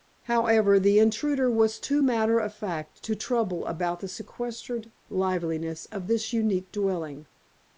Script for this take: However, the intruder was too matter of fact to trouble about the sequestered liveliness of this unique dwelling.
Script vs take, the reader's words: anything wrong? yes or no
no